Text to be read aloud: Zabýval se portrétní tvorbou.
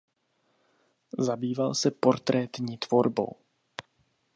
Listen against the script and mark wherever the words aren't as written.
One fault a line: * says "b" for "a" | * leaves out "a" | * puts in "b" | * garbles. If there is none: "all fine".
all fine